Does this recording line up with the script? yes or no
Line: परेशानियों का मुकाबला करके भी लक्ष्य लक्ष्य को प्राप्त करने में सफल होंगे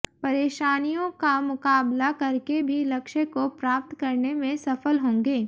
no